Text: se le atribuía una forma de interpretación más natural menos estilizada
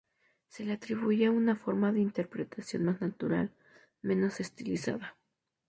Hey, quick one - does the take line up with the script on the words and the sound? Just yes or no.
yes